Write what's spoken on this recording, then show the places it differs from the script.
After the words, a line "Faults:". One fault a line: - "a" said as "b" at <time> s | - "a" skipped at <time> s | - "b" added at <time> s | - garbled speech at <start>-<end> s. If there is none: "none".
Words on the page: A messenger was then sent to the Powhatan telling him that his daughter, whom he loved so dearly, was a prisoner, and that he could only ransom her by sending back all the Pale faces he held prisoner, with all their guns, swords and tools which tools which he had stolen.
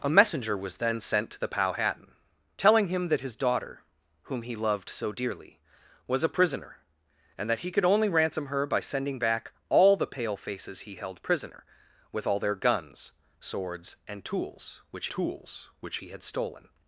A messenger was then sent to the Powhatan telling him that his daughter, whom he loved so dearly, was a prisoner, and that he could only ransom her by sending back all the Pale faces he held prisoner, with all their guns, swords and tools which tools which he had stolen.
Faults:
none